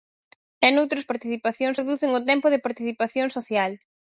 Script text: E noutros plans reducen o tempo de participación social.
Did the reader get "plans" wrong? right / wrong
wrong